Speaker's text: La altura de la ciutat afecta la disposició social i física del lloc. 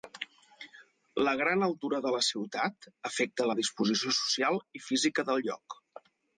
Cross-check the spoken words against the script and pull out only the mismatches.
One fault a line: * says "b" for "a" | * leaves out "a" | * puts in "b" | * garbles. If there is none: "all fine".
* puts in "gran"